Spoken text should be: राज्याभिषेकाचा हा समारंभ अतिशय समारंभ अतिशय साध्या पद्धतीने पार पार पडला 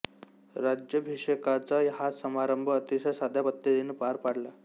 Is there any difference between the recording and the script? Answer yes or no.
yes